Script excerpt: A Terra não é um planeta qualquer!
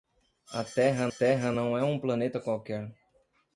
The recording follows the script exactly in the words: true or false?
false